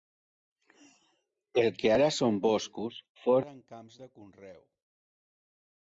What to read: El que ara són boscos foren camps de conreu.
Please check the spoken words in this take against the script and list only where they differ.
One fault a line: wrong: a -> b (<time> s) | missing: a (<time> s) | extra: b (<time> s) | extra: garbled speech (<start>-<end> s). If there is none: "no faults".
no faults